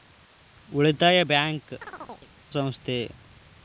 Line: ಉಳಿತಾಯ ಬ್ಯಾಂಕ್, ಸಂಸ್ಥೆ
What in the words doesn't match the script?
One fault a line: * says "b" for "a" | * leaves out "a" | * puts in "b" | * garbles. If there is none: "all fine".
all fine